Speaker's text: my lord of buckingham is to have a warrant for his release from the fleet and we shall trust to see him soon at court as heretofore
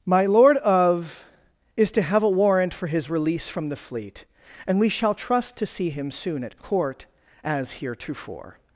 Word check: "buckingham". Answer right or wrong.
wrong